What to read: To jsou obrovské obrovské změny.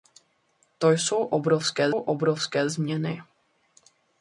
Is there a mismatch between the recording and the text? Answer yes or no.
no